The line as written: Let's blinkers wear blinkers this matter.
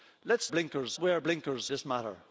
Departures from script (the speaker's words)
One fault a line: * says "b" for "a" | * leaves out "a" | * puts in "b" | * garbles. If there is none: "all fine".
all fine